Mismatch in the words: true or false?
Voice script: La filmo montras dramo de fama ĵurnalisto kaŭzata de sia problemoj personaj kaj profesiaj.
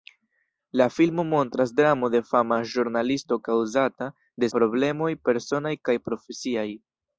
true